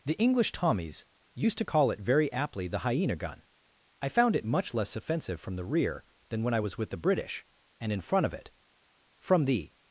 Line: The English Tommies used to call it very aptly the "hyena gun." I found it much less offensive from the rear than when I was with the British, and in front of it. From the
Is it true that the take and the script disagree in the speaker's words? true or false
false